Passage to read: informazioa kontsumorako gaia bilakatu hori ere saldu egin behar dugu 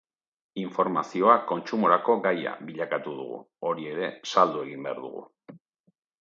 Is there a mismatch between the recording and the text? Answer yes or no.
yes